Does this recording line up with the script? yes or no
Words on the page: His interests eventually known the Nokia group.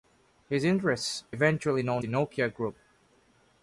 yes